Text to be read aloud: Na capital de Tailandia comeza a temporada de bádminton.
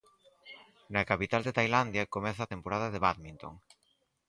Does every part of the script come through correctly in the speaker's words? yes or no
yes